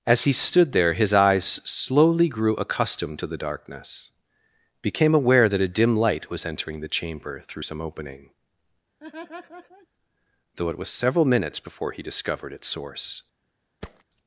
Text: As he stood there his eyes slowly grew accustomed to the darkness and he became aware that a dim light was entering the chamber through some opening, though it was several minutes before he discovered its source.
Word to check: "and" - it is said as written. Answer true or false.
false